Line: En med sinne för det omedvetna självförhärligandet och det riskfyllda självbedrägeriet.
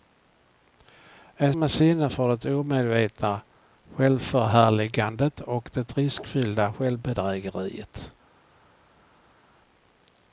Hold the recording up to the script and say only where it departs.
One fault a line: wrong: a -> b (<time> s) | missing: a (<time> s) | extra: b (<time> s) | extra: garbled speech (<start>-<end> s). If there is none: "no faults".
no faults